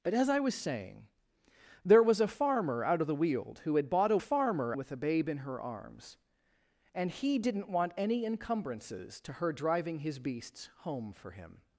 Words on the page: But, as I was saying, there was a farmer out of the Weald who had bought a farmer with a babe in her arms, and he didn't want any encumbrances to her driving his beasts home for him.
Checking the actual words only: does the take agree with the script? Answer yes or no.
yes